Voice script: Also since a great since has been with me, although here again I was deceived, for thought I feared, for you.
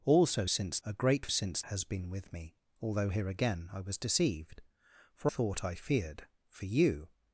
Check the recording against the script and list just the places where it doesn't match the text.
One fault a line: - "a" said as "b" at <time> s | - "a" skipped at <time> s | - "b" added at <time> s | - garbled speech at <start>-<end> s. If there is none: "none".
none